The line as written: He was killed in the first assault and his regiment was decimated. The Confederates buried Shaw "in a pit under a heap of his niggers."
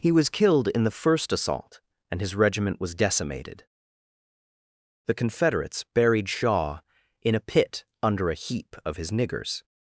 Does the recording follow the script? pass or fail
pass